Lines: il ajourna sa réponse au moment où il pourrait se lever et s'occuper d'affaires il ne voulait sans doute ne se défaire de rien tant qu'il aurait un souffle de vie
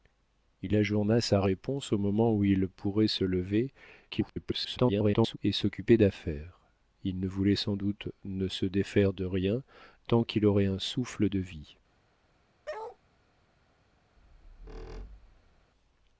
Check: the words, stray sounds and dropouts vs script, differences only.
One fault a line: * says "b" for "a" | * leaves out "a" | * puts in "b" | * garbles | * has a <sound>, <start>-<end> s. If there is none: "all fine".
* garbles
* has a bark, 12.7-13.0 s
* has a squeak, 14.2-15.7 s